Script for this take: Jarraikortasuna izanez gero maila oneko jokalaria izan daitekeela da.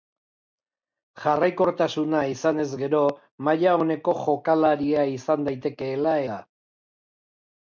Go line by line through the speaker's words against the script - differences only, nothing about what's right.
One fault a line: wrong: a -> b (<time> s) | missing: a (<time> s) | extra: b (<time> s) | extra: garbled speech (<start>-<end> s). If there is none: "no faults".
no faults